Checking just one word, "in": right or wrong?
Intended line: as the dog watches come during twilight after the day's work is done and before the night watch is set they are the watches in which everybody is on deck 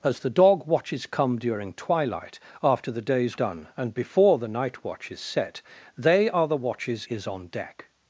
wrong